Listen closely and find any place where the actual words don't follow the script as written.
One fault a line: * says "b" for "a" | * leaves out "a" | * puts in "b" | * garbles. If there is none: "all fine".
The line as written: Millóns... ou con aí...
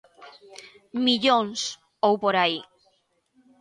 * says "por" for "con"